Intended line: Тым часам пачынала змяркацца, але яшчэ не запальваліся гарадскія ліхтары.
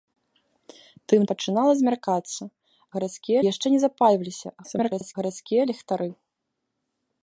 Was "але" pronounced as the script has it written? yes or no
no